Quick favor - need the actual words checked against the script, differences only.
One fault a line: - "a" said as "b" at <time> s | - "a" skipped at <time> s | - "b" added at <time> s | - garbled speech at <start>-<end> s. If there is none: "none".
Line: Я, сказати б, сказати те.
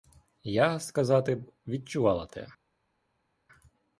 - "сказати" said as "відчувала" at 1.7 s